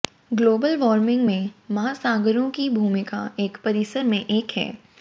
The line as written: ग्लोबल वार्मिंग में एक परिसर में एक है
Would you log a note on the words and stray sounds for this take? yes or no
yes